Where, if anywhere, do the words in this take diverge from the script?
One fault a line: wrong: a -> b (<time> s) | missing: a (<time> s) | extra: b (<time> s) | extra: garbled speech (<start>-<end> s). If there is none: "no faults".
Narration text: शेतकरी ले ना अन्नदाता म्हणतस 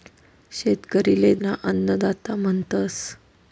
no faults